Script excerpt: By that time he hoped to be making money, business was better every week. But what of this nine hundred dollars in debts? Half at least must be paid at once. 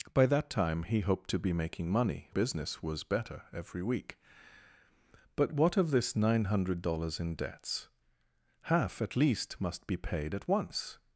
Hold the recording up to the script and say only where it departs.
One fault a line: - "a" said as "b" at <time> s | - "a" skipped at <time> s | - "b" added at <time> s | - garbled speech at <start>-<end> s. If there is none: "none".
none